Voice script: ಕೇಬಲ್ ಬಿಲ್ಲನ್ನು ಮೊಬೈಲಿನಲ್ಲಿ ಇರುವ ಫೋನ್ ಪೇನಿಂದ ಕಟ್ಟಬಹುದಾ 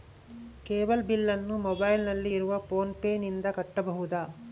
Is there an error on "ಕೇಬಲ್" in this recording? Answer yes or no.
no